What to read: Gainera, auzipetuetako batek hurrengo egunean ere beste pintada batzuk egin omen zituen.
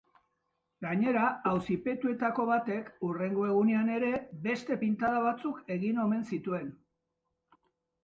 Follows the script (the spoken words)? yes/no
yes